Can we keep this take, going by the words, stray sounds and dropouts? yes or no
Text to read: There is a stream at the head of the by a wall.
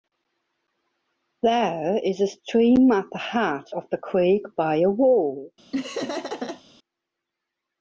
no